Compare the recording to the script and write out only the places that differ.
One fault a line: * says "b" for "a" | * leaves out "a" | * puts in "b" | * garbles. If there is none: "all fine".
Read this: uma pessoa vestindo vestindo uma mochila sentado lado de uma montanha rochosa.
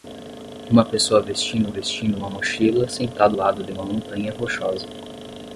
all fine